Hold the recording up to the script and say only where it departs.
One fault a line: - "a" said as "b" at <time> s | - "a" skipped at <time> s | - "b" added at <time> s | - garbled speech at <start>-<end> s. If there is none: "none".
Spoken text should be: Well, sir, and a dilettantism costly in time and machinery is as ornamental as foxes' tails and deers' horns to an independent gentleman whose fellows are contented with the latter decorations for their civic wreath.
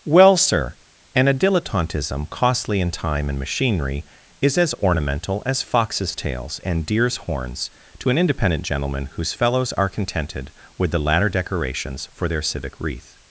none